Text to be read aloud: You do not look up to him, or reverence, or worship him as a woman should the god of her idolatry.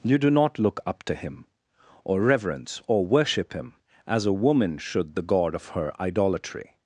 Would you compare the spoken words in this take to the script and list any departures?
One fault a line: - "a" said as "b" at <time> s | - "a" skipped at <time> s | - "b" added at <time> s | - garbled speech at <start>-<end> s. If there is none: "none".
none